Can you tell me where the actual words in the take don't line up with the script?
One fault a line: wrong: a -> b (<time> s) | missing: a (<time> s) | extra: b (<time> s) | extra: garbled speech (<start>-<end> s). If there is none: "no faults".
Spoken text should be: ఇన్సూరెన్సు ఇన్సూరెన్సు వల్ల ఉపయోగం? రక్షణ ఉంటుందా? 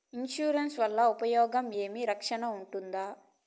missing: ఇన్సూరెన్సు (0.8 s)
extra: ఏమి (1.8 s)